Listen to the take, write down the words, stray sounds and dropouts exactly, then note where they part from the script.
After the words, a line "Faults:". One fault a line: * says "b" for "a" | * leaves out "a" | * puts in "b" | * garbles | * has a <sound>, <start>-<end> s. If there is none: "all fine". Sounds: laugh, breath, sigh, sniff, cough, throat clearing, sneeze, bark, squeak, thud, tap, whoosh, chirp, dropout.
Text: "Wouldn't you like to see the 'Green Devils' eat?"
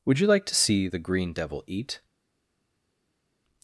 "Would you like to see the 'Green Devil' eat?"
Faults:
* says "Would" for "Wouldn't"
* says "Devil" for "Devils"